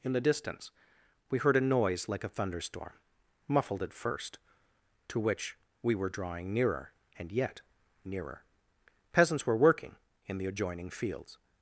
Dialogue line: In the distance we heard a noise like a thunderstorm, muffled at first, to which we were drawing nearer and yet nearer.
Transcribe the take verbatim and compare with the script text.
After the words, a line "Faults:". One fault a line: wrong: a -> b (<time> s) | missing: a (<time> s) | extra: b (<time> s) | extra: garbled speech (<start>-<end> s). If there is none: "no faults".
In the distance we heard a noise like a thunderstorm, muffled at first, to which we were drawing nearer and yet nearer. Peasants were working in the adjoining fields
Faults:
extra: Peasants were working in the adjoining fields (9.1 s)